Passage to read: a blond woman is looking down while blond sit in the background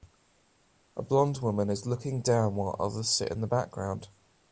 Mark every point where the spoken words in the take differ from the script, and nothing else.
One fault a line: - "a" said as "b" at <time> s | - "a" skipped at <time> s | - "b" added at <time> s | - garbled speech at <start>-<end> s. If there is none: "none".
- "blond" said as "others" at 2.8 s